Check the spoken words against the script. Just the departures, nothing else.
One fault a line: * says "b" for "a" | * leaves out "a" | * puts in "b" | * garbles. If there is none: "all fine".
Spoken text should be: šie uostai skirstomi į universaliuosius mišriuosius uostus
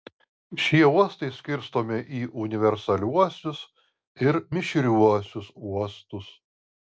* puts in "ir"